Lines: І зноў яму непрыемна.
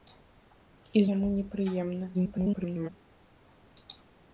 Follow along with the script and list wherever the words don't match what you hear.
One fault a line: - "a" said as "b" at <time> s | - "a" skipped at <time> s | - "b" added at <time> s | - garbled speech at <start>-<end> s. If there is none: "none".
- "зноў" skipped at 1.0 s
- garbled speech at 2.1-2.9 s